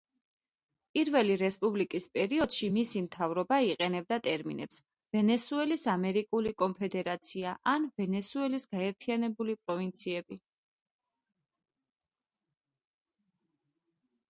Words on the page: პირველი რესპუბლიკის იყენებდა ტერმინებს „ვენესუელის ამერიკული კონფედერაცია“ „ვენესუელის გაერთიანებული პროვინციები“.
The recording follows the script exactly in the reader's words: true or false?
false